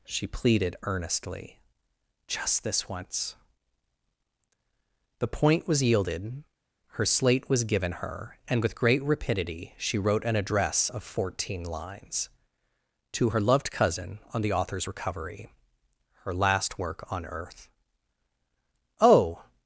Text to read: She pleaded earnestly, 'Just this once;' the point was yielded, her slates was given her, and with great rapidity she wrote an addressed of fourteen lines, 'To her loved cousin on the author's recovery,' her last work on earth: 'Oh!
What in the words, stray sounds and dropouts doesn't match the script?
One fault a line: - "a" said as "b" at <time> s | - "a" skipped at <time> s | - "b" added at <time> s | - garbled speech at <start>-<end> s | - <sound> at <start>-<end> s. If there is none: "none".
- "slates" said as "slate" at 7.0 s
- "addressed" said as "address" at 10.3 s